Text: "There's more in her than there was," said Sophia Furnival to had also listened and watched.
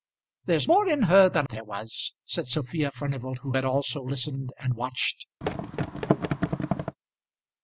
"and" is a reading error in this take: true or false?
false